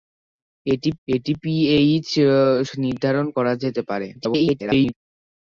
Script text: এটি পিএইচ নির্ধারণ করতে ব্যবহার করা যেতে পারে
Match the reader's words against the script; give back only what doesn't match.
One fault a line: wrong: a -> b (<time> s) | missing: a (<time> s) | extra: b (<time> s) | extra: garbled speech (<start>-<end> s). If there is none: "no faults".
extra: এটি (1.1 s)
missing: করতে ব্যবহার (3.3 s)
extra: garbled speech (4.1-4.9 s)